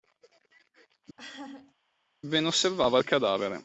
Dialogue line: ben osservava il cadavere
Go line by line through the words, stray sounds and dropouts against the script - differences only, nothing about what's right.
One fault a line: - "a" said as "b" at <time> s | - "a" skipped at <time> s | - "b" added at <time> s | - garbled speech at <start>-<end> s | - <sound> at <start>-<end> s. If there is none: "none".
- laugh at 1.2-1.7 s